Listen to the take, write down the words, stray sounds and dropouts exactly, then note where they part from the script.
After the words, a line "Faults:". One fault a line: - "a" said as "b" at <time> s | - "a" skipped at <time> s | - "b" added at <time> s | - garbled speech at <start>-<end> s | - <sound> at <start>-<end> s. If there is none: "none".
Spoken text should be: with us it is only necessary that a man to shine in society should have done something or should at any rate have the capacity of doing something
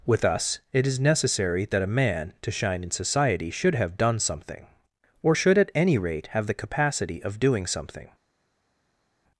with us it is necessary that a man to shine in society should have done something or should at any rate have the capacity of doing something
Faults:
- "only" skipped at 1.0 s